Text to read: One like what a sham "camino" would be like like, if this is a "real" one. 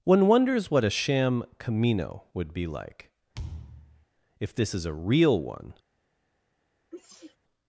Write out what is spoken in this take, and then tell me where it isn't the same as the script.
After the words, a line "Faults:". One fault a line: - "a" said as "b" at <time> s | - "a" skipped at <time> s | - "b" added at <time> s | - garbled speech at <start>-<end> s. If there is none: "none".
One wonders what a sham "camino" would be like, if this is a "real" one.
Faults:
- "like" said as "wonders" at 0.3 s
- "like" skipped at 3.1 s